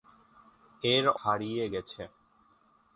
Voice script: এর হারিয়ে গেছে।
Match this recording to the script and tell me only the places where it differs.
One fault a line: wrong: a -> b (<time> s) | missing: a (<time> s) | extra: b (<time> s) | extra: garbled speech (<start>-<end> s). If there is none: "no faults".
no faults